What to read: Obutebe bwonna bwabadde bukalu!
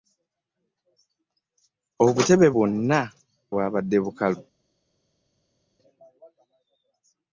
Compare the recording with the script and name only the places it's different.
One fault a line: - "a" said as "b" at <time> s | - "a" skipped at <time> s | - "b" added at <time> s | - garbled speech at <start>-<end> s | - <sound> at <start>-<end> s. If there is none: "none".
none